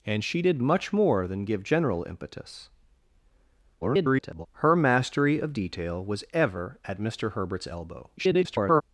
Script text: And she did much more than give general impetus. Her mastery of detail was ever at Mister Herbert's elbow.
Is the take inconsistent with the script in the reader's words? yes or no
yes